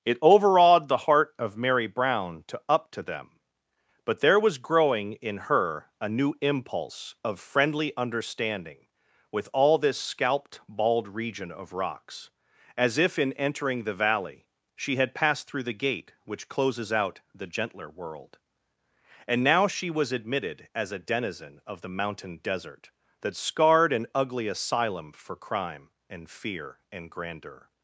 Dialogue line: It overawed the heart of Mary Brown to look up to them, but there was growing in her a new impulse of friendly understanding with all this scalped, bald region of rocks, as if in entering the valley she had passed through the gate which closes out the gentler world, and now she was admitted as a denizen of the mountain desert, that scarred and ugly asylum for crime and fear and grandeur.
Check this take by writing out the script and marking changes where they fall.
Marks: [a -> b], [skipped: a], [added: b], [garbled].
It overawed the heart of Mary Brown to [skipped: look] up to them, but there was growing in her a new impulse of friendly understanding with all this scalped, bald region of rocks, as if in entering the valley she had passed through the gate which closes out the gentler world, and now she was admitted as a denizen of the mountain desert, that scarred and ugly asylum for crime and fear and grandeur.